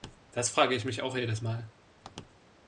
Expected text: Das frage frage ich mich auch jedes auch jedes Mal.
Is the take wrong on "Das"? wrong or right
right